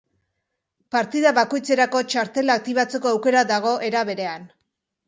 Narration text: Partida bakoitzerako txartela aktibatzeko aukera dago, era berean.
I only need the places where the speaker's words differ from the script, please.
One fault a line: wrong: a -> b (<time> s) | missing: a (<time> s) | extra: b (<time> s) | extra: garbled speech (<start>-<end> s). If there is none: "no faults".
no faults